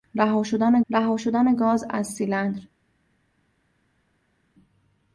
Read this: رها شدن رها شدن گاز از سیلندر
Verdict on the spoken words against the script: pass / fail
pass